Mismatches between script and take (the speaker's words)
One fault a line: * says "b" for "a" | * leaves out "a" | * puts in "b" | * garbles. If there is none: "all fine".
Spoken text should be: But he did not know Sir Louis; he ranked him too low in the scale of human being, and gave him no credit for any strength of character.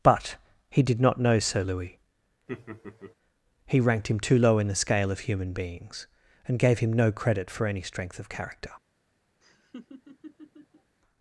* says "beings" for "being"